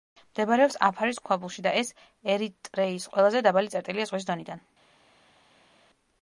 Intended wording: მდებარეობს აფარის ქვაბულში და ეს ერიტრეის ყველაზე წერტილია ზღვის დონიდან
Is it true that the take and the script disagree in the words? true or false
true